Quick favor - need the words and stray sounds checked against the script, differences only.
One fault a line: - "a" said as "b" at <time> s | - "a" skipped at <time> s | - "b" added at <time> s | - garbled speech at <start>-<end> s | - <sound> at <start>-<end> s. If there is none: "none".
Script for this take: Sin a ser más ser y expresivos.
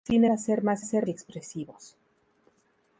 none